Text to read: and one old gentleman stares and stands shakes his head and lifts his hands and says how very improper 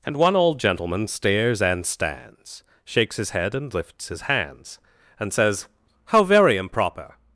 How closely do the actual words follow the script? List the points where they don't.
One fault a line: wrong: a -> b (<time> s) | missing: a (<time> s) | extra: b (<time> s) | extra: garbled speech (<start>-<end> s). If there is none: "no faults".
no faults